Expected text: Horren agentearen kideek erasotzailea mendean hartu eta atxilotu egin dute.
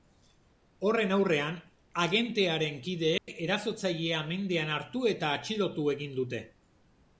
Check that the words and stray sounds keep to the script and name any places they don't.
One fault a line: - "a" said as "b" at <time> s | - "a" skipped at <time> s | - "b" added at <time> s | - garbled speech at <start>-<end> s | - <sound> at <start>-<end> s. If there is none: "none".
- "aurrean" added at 1.2 s
- dropout at 3.2-3.3 s